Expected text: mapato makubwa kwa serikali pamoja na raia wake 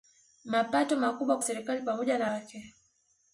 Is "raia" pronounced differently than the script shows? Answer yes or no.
yes